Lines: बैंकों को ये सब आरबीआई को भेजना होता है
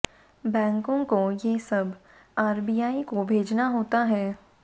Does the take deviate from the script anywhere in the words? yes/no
no